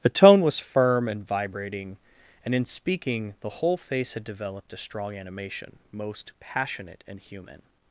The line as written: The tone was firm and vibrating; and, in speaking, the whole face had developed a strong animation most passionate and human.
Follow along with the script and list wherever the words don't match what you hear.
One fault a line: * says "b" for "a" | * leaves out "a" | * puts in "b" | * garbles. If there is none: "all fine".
all fine